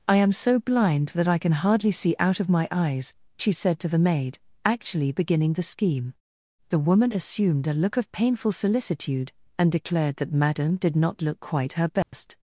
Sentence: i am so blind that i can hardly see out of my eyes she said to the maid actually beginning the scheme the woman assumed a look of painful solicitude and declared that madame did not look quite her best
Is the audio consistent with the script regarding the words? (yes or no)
yes